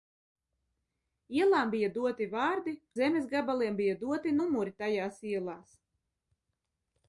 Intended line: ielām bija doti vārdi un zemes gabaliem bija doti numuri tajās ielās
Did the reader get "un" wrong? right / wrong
wrong